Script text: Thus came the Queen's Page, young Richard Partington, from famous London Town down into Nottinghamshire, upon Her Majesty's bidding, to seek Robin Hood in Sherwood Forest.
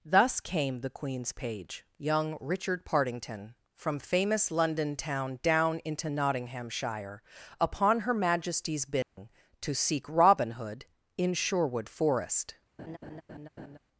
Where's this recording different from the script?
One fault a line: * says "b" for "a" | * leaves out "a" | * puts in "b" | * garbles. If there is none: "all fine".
all fine